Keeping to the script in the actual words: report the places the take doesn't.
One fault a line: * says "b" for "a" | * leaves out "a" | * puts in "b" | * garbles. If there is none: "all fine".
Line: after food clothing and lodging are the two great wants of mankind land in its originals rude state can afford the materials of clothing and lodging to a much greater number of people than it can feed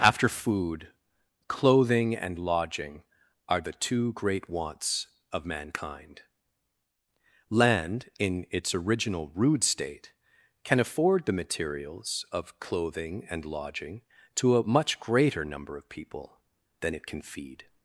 * says "original" for "originals"